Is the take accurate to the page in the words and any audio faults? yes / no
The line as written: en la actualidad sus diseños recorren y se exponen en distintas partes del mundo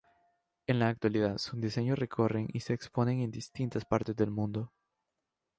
yes